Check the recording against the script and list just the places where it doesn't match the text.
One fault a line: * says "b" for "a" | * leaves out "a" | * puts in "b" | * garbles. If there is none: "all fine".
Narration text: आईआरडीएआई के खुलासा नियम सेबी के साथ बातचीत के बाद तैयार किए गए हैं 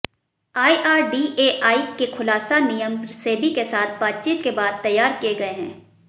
all fine